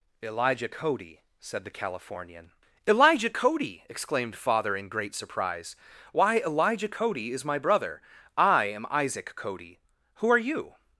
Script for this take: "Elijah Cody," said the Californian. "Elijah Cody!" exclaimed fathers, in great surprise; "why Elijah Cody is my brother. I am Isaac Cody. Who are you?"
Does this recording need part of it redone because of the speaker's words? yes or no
yes